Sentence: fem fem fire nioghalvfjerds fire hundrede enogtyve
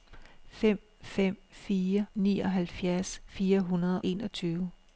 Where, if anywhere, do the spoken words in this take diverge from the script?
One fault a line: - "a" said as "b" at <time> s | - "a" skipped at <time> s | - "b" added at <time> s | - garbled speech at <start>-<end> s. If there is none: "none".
none